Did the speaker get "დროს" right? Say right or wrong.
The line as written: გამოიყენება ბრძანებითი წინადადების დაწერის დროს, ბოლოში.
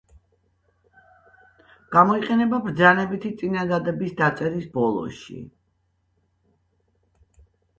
wrong